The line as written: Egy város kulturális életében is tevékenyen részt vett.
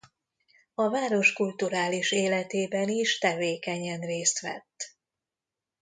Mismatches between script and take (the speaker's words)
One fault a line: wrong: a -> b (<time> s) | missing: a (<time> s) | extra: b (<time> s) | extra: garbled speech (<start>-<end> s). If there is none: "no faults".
wrong: Egy -> A (0.7 s)